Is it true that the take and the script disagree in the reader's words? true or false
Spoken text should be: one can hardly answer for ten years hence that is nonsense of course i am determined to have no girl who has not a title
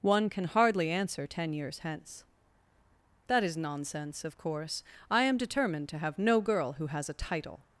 true